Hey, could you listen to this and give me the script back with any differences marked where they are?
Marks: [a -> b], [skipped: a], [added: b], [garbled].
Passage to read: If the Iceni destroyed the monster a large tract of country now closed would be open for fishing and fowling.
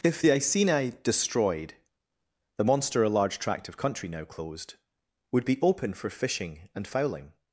If the Iceni destroyed the monster a large tract of country now closed would be open for fishing and fowling.